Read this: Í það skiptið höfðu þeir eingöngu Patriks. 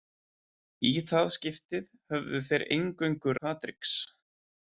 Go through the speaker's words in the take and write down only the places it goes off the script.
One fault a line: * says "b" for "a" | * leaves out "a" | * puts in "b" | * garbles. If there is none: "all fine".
all fine